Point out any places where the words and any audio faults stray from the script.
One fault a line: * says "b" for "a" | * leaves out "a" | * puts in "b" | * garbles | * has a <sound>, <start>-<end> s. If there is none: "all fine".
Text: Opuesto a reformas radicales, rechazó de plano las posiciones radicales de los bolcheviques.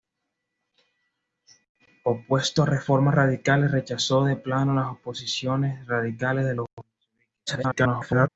* garbles